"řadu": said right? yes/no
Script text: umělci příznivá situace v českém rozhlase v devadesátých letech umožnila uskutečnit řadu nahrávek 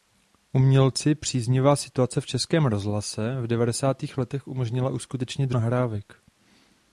no